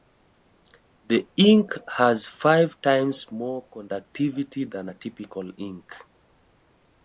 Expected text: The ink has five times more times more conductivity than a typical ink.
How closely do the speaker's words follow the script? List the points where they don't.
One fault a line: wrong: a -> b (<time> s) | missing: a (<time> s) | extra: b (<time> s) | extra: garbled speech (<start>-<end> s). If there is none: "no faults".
missing: times more (3.7 s)